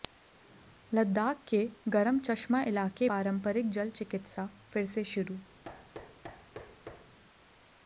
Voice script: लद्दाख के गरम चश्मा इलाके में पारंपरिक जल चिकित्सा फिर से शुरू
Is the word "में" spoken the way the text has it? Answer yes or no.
no